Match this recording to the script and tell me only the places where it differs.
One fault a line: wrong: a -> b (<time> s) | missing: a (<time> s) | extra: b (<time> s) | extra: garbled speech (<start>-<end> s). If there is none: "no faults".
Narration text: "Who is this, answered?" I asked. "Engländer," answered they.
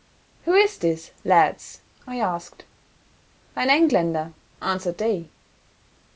wrong: answered -> lads (1.2 s)
extra: Ein (3.5 s)